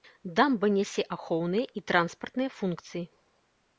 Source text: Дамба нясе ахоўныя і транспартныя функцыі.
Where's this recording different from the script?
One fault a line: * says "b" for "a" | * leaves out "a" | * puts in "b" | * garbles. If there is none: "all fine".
all fine